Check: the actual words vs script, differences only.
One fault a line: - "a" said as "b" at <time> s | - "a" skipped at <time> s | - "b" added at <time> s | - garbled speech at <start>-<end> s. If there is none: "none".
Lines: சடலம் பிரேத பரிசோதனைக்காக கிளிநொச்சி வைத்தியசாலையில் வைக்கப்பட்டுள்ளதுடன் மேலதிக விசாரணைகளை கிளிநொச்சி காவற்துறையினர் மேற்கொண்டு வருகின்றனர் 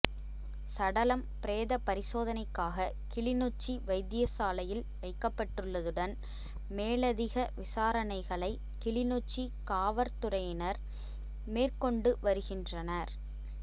none